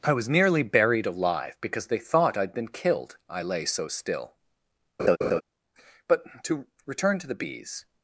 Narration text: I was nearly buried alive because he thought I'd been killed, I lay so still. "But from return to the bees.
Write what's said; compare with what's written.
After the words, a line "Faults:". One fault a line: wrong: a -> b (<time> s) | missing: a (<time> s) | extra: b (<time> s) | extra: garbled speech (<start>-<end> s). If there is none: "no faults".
I was nearly buried alive because they thought I'd been killed, I lay so still. "But to return to the bees.
Faults:
wrong: he -> they (1.9 s)
wrong: from -> to (6.4 s)